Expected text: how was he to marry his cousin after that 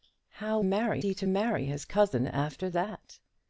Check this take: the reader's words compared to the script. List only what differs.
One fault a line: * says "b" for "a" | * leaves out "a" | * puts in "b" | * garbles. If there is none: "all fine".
* says "marry" for "was"